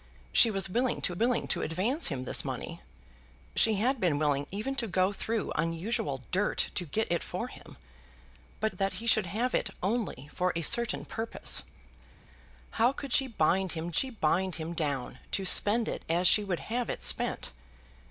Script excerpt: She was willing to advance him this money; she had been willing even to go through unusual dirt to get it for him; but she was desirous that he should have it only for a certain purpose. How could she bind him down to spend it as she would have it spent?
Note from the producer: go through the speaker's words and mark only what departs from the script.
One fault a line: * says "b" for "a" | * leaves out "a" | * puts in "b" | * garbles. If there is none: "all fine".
* puts in "willing to"
* leaves out "she was desirous"
* puts in "she bind him"